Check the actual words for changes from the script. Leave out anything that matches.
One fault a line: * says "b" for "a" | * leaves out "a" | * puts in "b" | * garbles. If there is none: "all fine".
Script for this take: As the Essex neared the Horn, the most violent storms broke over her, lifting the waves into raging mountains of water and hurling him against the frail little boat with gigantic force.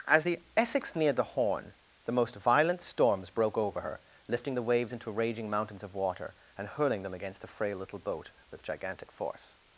* says "them" for "him"